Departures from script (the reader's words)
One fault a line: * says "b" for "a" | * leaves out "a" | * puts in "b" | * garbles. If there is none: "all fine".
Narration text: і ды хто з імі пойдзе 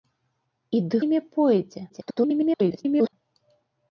* leaves out "хто з"
* garbles